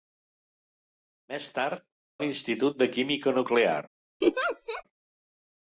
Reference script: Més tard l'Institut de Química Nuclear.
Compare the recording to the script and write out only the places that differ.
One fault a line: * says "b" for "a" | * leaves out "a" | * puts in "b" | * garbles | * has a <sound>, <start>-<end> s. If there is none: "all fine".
* has a laugh, 4.2-4.8 s